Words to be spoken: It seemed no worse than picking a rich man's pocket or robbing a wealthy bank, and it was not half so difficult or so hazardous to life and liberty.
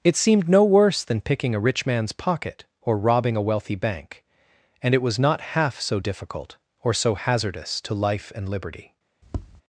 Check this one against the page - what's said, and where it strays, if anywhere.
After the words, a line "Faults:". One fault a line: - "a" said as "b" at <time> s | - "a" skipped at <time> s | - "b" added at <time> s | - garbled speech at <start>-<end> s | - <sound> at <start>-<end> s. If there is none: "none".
It seemed no worse than picking a rich man's pocket or robbing a wealthy bank, and it was not half so difficult or so hazardous to life and liberty.
Faults:
- tap at 9.2-9.6 s